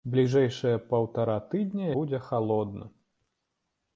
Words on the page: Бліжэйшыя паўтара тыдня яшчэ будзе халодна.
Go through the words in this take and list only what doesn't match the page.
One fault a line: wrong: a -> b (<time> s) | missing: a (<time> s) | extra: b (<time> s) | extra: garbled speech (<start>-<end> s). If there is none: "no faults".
missing: яшчэ (1.9 s)